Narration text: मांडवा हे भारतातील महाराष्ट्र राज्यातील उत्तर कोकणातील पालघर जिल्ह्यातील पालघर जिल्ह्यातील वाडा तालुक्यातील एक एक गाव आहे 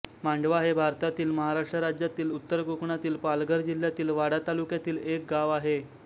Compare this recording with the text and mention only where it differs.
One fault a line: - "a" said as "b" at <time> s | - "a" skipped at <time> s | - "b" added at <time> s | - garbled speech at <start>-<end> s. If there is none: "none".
- "पालघर जिल्ह्यातील" skipped at 4.1 s
- "एक" skipped at 5.2 s